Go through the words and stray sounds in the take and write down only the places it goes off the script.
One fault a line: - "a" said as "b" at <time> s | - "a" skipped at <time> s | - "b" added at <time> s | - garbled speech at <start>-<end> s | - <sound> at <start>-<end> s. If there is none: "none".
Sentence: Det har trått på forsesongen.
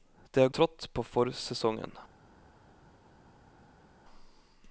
none